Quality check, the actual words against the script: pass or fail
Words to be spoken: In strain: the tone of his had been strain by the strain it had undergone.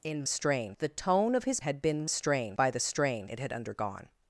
pass